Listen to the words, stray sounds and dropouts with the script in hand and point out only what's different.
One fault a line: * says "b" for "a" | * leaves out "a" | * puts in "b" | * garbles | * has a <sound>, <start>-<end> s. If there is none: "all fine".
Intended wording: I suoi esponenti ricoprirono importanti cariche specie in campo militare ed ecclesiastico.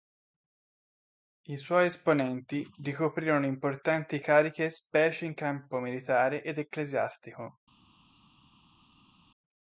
all fine